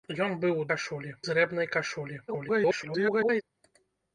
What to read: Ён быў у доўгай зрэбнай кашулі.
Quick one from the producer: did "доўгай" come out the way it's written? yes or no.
no